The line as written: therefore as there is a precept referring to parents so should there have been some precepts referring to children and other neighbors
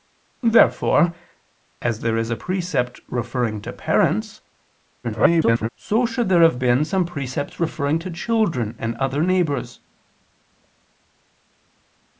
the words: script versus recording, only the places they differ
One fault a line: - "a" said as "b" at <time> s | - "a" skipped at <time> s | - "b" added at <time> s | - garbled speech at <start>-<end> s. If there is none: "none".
- garbled speech at 5.0-5.7 s